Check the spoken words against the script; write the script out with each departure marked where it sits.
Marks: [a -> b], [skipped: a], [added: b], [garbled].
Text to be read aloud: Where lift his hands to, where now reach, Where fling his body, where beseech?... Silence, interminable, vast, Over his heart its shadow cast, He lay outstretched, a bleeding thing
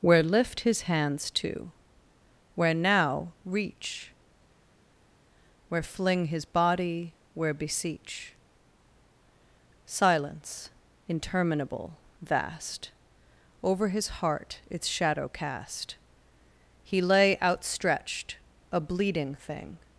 Where lift his hands to, where now reach, Where fling his body, where beseech?... Silence, interminable, vast, Over his heart its shadow cast, He lay outstretched, a bleeding thing